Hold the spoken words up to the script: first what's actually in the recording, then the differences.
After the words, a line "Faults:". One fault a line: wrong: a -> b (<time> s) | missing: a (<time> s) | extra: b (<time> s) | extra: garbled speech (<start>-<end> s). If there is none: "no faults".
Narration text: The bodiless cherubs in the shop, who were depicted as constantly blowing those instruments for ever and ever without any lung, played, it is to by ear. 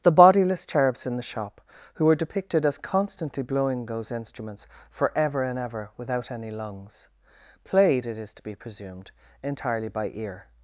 The bodiless cherubs in the shop, who were depicted as constantly blowing those instruments for ever and ever without any lungs, played, it is to be presumed, entirely by ear.
Faults:
wrong: lung -> lungs (6.5 s)
extra: be presumed entirely (8.4 s)